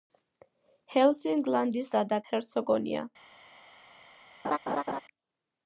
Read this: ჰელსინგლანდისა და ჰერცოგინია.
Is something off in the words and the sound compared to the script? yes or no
yes